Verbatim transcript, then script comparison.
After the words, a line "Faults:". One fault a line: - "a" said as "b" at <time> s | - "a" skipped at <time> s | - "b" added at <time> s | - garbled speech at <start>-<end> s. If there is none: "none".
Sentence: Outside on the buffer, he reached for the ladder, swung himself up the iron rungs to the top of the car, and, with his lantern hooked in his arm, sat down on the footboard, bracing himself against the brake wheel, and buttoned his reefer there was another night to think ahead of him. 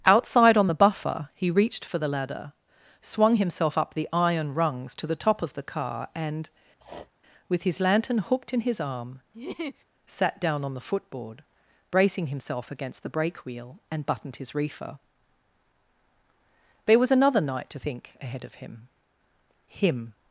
Outside on the buffer, he reached for the ladder, swung himself up the iron rungs to the top of the car, and, with his lantern hooked in his arm, sat down on the footboard, bracing himself against the brake wheel, and buttoned his reefer there was another night to think ahead of him him.
Faults:
- "him" added at 19.7 s